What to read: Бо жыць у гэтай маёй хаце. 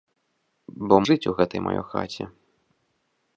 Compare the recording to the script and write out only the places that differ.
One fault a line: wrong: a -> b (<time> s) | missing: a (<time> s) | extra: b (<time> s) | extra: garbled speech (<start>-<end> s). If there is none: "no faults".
no faults